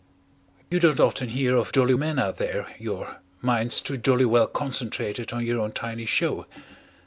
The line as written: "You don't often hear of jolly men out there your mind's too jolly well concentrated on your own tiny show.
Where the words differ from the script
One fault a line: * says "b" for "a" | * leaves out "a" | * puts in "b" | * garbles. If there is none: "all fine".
all fine